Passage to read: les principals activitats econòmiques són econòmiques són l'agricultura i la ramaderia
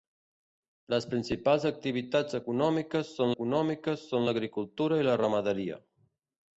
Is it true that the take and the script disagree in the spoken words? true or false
false